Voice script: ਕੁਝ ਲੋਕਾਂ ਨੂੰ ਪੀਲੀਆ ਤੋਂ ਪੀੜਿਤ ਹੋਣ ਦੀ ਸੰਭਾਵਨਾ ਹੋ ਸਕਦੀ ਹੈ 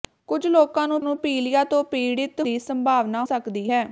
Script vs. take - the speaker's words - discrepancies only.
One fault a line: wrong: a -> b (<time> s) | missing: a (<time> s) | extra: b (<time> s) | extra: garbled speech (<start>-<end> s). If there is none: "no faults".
extra: ਨੂੰ (1.0 s)
missing: ਹੋਣ (2.4 s)
missing: ਹੋ (3.2 s)